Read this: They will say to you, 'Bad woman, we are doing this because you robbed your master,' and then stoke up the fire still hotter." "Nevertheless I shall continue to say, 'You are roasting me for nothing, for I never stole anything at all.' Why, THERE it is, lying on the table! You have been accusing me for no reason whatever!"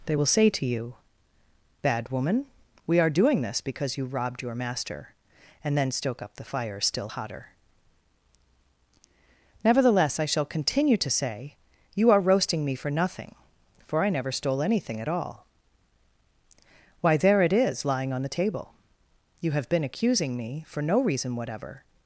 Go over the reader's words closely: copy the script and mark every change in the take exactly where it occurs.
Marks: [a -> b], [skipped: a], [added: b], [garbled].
They will say to you, 'Bad woman, we are doing this because you robbed your master,' and then stoke up the fire still hotter." "Nevertheless I shall continue to say, 'You are roasting me for nothing, for I never stole anything at all.' Why, THERE it is, lying on the table! You have been accusing me for no reason whatever!"